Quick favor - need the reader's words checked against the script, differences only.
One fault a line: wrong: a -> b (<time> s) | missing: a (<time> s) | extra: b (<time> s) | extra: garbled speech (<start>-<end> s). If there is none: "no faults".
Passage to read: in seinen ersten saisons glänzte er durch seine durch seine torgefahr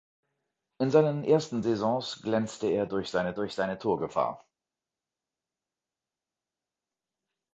no faults